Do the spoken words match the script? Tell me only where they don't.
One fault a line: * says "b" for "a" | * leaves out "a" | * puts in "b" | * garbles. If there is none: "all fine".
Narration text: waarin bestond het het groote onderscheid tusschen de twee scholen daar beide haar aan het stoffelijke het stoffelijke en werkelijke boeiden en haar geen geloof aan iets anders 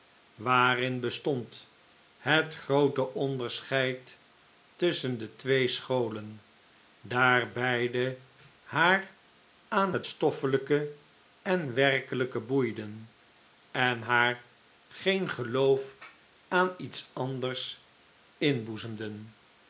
* leaves out "het"
* leaves out "het stoffelijke"